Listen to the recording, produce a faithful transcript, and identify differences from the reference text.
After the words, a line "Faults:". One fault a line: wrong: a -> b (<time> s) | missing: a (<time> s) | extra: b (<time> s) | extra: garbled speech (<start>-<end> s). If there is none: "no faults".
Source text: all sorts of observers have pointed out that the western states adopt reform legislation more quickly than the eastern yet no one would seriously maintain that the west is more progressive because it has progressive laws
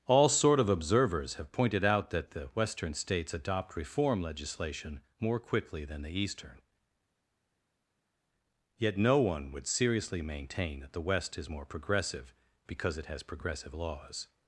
all sort of observers have pointed out that the western states adopt reform legislation more quickly than the eastern yet no one would seriously maintain that the west is more progressive because it has progressive laws
Faults:
wrong: sorts -> sort (0.3 s)